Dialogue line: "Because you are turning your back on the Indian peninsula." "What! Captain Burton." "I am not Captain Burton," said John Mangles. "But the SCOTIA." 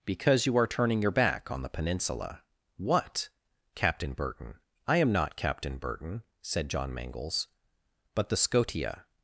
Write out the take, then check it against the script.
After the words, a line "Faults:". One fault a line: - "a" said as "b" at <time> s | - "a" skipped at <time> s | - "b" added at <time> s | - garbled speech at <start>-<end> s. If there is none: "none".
"Because you are turning your back on the peninsula." "What! Captain Burton." "I am not Captain Burton," said John Mangles. "But the SCOTIA."
Faults:
- "Indian" skipped at 1.7 s